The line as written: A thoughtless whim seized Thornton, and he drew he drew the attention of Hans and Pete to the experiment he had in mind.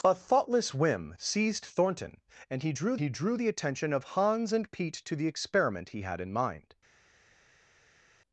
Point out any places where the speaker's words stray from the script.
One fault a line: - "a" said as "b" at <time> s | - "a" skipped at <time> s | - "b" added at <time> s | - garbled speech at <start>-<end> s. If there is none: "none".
none